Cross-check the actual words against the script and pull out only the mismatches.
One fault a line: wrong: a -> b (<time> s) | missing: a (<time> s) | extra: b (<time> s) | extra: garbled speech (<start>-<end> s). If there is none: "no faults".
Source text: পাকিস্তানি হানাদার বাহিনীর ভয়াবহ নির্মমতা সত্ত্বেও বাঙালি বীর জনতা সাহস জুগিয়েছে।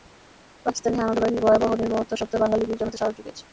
no faults